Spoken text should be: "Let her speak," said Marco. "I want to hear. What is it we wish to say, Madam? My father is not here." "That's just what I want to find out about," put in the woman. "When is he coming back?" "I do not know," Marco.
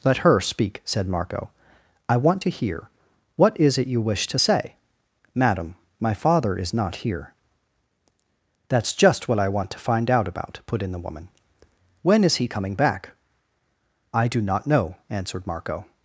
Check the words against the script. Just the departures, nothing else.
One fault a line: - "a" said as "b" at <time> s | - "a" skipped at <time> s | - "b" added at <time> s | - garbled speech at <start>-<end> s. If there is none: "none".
- "we" said as "you" at 3.9 s
- "answered" added at 15.1 s